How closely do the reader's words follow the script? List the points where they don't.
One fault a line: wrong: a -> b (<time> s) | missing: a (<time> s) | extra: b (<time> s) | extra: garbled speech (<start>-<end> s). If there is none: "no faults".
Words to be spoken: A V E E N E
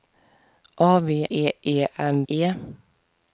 no faults